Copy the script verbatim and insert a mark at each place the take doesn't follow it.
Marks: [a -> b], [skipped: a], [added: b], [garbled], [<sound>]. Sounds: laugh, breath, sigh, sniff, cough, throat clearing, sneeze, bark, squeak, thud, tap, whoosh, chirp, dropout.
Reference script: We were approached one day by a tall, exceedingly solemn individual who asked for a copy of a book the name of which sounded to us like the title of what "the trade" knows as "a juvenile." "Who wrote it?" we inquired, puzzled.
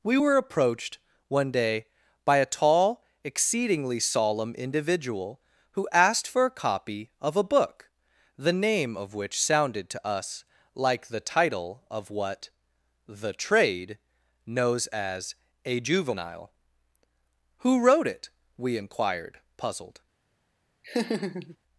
We were approached one day by a tall, exceedingly solemn individual who asked for a copy of a book the name of which sounded to us like the title of what "the trade" knows as "a juvenile." "Who wrote it?" we inquired, puzzled. [laugh]